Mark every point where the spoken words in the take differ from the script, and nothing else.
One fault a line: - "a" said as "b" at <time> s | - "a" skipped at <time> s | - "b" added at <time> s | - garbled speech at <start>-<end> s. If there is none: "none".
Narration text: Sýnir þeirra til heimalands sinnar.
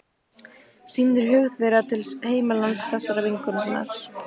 - "hug" added at 1.3 s
- "þessarar vinkonu" added at 3.0 s